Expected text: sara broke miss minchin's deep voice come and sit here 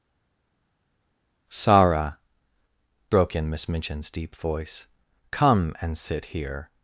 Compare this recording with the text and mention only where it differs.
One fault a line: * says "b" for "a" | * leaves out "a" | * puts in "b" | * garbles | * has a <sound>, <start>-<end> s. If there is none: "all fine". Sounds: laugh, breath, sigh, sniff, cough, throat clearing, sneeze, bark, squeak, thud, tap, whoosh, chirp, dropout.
* puts in "in"